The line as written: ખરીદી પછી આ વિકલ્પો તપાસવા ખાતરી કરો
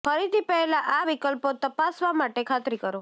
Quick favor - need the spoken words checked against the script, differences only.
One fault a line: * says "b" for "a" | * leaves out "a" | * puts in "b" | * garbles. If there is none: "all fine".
* says "પહેલાં" for "પછી"
* puts in "માટે"